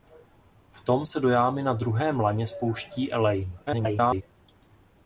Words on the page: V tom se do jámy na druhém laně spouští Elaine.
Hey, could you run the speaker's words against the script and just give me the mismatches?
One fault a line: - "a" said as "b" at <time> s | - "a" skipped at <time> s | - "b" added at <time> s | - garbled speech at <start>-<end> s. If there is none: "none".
- garbled speech at 3.7-4.2 s